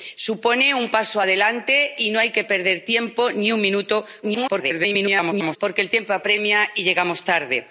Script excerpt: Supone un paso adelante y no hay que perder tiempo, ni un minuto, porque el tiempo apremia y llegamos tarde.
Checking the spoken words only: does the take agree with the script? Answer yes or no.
no